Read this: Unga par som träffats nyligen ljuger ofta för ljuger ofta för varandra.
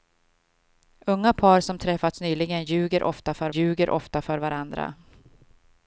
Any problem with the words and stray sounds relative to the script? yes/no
no